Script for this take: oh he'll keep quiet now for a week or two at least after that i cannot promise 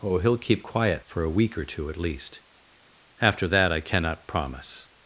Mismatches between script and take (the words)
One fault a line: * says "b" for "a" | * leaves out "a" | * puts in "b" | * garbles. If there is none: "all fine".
* leaves out "now"